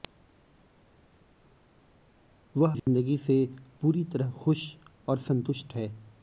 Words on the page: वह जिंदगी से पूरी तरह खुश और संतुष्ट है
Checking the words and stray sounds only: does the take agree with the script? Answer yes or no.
no